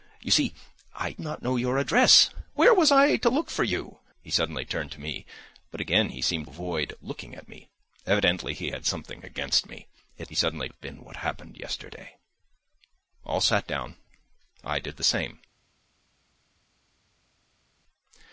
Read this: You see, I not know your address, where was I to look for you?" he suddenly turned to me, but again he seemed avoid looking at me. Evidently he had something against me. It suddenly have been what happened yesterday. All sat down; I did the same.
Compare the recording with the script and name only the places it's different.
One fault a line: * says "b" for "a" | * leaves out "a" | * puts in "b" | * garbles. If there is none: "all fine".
all fine